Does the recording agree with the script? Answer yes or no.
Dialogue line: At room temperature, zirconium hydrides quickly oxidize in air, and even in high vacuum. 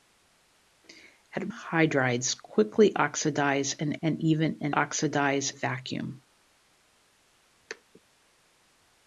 no